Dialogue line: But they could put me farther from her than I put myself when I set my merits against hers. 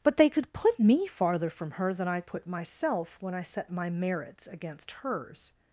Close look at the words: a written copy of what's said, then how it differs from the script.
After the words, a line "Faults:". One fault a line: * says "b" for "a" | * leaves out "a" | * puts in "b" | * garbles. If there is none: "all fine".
But they could put me farther from her than I put myself when I set my merits against hers.
Faults:
all fine